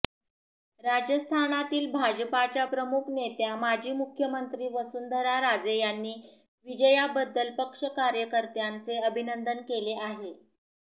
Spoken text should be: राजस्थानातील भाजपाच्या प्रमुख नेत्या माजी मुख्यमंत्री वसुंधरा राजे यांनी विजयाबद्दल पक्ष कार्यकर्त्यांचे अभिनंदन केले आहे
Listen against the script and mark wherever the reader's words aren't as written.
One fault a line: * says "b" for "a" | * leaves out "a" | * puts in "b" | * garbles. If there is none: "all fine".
all fine